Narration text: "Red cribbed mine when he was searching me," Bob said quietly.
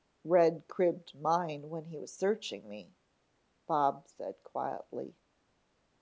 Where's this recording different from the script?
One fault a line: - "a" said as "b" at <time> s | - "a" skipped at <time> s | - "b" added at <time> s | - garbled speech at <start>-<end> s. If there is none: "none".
none